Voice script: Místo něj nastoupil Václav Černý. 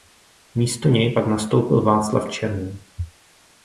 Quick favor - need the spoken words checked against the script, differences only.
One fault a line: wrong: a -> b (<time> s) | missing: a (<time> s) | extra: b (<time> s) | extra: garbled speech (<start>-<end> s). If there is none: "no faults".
extra: pak (1.1 s)